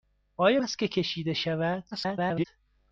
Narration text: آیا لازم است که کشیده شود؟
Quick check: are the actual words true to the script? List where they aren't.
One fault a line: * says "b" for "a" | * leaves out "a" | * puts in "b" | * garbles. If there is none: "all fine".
* leaves out "لازم"
* garbles